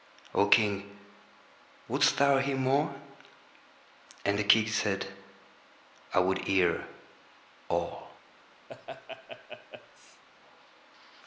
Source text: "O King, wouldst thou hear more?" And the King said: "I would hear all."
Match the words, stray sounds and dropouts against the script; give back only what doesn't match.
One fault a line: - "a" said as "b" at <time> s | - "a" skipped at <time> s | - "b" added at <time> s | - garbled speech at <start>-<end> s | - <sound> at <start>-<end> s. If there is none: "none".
- laugh at 8.7-10.2 s